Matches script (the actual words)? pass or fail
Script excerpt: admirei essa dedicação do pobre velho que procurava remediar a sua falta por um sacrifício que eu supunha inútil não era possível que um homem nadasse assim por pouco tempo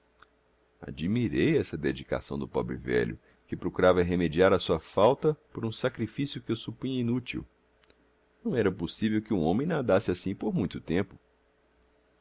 fail